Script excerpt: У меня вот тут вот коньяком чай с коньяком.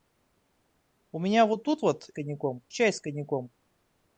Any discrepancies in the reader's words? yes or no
no